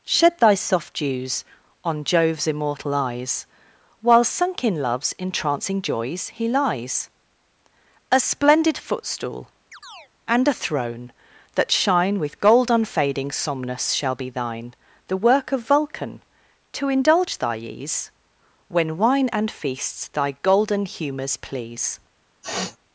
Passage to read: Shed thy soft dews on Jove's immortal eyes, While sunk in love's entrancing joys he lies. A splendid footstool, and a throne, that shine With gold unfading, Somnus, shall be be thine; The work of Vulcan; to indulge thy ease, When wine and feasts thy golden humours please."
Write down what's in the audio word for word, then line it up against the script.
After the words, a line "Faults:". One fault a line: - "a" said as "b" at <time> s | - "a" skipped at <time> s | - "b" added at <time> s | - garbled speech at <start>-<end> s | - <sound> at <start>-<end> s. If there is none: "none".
Shed thy soft dews on Jove's immortal eyes, While sunk in love's entrancing joys he lies. A splendid footstool, and a throne, that shine With gold unfading, Somnus, shall be thine; The work of Vulcan; to indulge thy ease, When wine and feasts thy golden humours please."
Faults:
- chirp at 9.7-10.1 s
- "be" skipped at 14.3 s
- sniff at 22.4-22.8 s